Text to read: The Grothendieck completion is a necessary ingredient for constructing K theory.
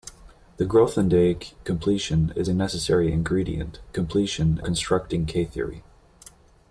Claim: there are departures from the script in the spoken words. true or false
true